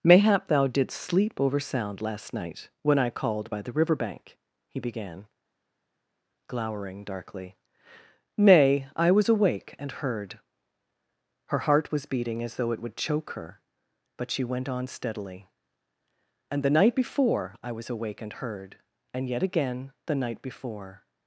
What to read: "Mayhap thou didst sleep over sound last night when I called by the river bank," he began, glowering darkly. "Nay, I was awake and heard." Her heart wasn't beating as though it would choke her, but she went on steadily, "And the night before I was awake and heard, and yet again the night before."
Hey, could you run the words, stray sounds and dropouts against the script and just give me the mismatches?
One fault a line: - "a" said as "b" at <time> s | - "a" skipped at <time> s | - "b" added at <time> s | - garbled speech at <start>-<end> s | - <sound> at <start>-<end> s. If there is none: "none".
- "wasn't" said as "was" at 11.9 s